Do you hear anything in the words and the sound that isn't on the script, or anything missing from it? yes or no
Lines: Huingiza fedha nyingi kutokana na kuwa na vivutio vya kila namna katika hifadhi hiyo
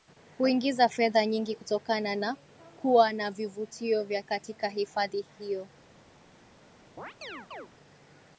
yes